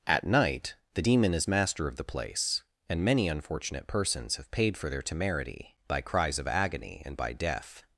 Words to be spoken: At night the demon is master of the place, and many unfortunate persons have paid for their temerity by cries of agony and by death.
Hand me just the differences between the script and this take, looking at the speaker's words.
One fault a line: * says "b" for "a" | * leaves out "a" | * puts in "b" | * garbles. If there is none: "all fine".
all fine